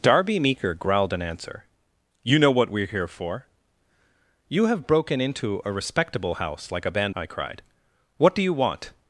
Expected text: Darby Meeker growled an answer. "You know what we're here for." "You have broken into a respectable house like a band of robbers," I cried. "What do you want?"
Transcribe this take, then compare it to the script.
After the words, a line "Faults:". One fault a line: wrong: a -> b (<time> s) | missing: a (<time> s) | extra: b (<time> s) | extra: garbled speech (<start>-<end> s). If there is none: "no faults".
Darby Meeker growled an answer. "You know what we're here for." "You have broken into a respectable house like a band," I cried. "What do you want?"
Faults:
missing: of robbers (7.2 s)